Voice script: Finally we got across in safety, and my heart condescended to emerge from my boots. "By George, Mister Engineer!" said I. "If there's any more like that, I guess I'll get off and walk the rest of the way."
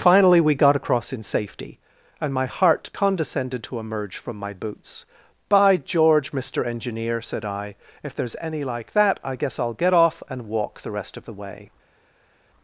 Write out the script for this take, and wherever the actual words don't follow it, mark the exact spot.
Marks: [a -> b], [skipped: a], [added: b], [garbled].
Finally we got across in safety, and my heart condescended to emerge from my boots. "By George, Mister Engineer!" said I. "If there's any [skipped: more] like that, I guess I'll get off and walk the rest of the way."